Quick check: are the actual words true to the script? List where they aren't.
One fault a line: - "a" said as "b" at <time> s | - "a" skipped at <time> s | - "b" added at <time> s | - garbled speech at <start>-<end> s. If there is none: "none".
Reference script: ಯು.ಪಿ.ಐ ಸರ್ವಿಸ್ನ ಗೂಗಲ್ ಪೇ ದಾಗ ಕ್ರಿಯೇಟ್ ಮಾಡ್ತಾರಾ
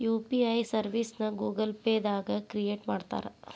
none